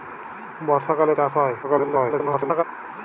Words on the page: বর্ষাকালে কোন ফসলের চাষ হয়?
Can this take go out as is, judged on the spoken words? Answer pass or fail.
fail